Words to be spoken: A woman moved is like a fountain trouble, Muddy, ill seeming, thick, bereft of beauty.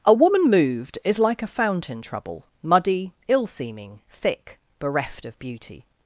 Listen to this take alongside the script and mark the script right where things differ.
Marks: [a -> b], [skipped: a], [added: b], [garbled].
A woman moved is like a fountain trouble, Muddy, ill seeming, thick, bereft of beauty.